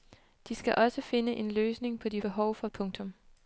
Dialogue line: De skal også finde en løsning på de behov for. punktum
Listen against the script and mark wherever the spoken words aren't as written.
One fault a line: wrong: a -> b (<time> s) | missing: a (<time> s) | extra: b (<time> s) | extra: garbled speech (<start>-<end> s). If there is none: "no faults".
no faults